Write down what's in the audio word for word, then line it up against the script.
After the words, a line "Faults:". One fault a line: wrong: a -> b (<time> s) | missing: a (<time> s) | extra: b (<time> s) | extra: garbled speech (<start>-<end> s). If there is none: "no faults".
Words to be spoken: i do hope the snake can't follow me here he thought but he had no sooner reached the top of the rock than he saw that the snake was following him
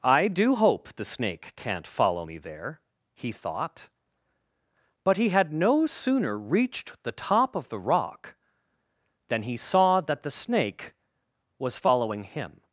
i do hope the snake can't follow me there he thought but he had no sooner reached the top of the rock than he saw that the snake was following him
Faults:
wrong: here -> there (2.4 s)